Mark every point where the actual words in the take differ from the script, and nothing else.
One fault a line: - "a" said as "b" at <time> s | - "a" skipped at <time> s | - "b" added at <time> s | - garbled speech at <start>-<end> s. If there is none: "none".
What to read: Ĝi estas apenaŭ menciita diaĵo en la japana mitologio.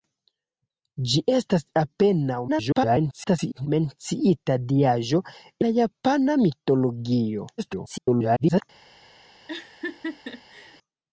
- garbled speech at 2.5-3.7 s
- "en" skipped at 5.2 s
- garbled speech at 7.6-8.6 s